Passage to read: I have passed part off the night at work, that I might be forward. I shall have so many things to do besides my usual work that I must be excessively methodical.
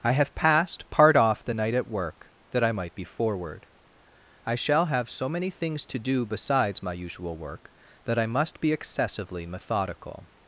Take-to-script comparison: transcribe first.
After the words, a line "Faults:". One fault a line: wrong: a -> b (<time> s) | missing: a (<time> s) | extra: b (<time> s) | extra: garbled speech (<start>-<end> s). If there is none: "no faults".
I have passed part off the night at work, that I might be forward. I shall have so many things to do besides my usual work that I must be excessively methodical.
Faults:
no faults